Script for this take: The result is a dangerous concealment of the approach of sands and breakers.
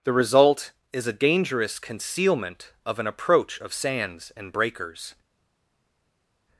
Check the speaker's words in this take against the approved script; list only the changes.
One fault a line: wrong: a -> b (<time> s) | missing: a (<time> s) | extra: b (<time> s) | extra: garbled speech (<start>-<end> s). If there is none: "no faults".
wrong: the -> an (3.0 s)